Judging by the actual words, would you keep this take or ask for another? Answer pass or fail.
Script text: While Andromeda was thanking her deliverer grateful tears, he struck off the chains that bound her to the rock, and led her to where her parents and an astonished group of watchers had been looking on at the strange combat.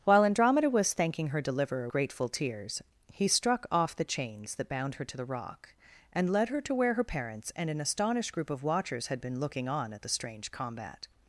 pass